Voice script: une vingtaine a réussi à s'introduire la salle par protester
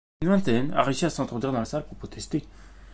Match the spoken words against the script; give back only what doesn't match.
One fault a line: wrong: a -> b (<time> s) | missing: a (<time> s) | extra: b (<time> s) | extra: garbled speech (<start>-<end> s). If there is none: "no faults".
extra: dans (1.5 s)
wrong: par -> pour (1.8 s)